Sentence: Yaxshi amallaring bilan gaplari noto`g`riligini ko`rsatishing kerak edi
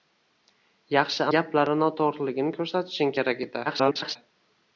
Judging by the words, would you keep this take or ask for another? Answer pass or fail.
fail